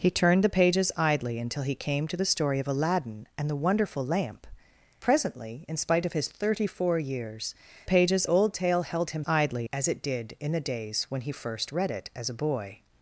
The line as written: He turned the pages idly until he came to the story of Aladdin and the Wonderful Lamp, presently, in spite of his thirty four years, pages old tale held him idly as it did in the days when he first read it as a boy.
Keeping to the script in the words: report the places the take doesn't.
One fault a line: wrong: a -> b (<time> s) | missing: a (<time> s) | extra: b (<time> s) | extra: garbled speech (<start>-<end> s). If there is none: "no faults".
no faults